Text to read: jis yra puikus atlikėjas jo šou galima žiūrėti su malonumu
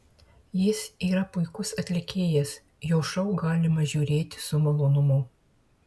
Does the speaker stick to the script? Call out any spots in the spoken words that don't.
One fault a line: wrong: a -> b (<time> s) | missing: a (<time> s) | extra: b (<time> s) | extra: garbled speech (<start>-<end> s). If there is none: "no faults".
no faults